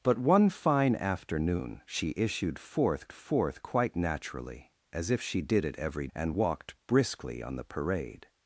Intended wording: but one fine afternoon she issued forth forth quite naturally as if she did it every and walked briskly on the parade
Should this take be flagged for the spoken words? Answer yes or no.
no